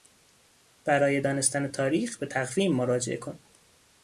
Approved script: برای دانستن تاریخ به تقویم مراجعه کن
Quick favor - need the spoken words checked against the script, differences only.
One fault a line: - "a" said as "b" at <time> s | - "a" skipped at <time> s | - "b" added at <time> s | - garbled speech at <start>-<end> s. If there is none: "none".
none